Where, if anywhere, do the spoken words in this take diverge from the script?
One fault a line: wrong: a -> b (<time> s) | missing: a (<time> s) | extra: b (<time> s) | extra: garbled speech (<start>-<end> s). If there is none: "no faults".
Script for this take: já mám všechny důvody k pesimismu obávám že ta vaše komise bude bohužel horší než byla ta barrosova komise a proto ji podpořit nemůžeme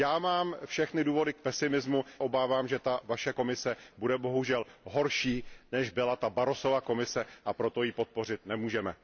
no faults